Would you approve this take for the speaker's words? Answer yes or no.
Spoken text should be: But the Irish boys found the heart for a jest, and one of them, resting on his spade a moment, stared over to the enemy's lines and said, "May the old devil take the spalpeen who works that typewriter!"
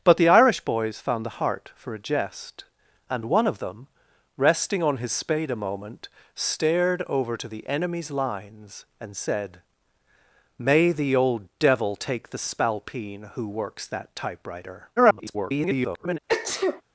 no